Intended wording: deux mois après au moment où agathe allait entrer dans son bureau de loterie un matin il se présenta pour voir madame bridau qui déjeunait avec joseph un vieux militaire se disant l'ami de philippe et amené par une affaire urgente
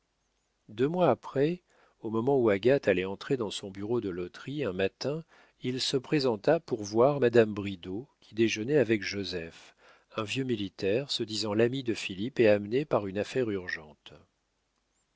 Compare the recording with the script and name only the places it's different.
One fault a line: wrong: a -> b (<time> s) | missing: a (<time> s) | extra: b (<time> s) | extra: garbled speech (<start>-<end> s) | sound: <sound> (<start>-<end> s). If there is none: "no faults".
no faults